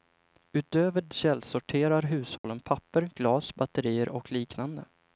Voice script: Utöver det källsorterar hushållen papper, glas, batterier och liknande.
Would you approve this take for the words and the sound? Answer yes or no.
no